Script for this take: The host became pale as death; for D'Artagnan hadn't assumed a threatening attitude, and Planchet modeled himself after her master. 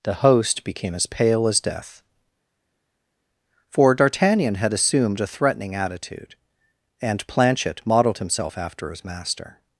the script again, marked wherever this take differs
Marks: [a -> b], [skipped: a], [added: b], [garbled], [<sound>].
The host became [added: as] pale as death; for D'Artagnan [hadn't -> had] assumed a threatening attitude, and Planchet modeled himself after [her -> his] master.